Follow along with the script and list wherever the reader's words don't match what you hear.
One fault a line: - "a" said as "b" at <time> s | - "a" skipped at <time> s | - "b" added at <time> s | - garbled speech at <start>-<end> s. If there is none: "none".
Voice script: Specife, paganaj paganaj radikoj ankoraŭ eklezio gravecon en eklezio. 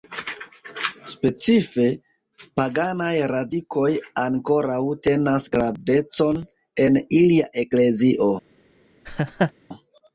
- "paganaj" skipped at 3.1 s
- "eklezio" said as "tenas" at 5.1 s
- "ilia" added at 7.2 s